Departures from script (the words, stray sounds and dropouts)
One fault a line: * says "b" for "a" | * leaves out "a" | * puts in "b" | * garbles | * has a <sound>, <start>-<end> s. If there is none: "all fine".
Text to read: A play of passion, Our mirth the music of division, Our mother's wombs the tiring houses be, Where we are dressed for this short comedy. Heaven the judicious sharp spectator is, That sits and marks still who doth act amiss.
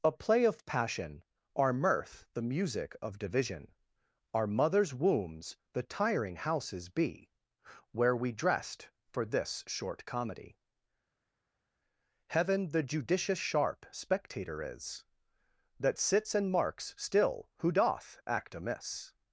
* leaves out "are"